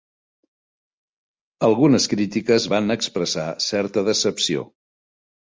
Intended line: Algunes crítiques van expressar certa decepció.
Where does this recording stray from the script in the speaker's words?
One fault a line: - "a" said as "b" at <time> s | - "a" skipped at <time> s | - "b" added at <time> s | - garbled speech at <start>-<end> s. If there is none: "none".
none